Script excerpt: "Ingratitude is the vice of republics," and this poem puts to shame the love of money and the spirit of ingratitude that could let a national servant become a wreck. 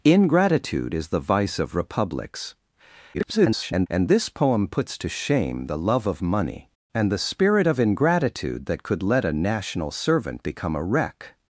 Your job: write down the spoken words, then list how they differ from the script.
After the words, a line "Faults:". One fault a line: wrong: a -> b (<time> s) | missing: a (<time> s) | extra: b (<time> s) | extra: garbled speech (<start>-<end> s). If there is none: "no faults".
"Ingratitude is the vice of republics," [garbled] and this poem puts to shame the love of money and the spirit of ingratitude that could let a national servant become a wreck.
Faults:
extra: garbled speech (3.1-3.9 s)